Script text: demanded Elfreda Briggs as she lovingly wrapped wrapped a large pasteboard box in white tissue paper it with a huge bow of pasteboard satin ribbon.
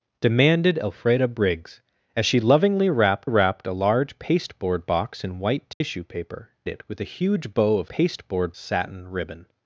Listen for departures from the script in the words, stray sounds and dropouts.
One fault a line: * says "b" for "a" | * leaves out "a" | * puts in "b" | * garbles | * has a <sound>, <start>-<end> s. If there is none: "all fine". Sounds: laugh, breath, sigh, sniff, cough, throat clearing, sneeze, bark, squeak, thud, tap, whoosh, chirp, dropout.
* has a dropout, 5.7-5.8 s